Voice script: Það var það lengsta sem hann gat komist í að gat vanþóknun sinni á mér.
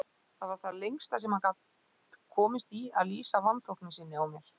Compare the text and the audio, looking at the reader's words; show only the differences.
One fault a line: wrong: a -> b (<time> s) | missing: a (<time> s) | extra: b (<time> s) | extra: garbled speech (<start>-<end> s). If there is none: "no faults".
wrong: gat -> lýsa (3.1 s)